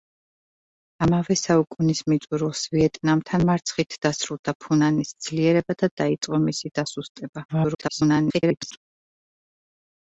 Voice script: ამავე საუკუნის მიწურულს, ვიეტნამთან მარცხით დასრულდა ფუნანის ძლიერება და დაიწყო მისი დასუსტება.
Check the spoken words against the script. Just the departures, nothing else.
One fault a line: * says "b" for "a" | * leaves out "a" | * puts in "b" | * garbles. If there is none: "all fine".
* garbles